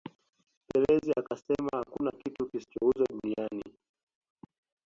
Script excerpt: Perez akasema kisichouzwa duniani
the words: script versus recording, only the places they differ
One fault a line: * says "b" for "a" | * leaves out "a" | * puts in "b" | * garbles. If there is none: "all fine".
* puts in "hakuna kitu"